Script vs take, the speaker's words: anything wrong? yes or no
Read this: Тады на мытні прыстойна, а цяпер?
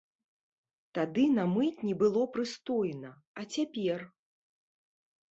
yes